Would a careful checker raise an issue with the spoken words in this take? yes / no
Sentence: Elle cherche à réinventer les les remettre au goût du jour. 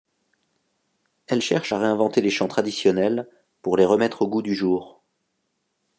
yes